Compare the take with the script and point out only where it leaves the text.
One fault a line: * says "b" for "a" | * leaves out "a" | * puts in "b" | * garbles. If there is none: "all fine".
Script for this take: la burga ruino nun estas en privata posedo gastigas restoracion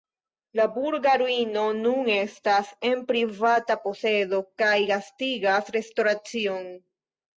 * puts in "kaj"